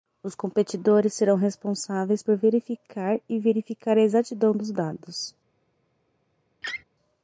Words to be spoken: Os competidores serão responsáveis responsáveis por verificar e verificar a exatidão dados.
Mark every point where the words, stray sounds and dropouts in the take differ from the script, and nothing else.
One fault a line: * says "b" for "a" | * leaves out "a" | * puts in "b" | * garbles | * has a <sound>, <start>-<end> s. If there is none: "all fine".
* leaves out "responsáveis"
* puts in "dos"
* has a laugh, 6.6-6.8 s